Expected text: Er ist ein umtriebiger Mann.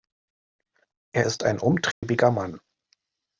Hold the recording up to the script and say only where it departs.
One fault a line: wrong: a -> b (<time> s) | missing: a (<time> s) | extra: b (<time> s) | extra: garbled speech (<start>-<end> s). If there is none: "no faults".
no faults